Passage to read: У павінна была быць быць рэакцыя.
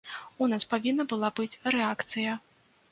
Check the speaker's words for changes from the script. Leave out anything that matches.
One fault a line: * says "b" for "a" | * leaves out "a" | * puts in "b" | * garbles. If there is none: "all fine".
* puts in "нас"
* leaves out "быць"